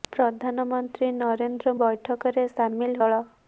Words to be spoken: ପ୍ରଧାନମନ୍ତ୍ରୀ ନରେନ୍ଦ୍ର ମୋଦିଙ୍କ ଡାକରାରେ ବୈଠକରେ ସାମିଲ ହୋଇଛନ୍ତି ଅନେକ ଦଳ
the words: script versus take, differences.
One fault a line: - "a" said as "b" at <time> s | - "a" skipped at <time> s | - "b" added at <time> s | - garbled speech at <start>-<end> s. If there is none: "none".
- "ମୋଦିଙ୍କ ଡାକରାରେ" skipped at 1.7 s
- "ହୋଇଛନ୍ତି ଅନେକ" skipped at 3.0 s